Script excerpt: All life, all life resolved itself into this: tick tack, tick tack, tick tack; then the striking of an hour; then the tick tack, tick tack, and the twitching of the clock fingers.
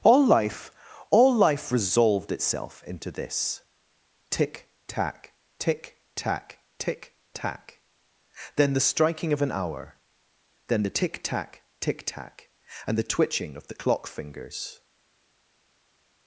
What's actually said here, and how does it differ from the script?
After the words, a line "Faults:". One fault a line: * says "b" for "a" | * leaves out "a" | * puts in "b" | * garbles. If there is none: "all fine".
All life, all life resolved itself into this: tick tack, tick tack, tick tack; then the striking of an hour; then the tick tack, tick tack, and the twitching of the clock fingers.
Faults:
all fine